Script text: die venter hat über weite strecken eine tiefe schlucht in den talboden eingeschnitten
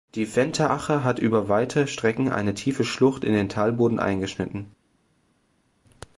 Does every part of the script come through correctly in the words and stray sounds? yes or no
no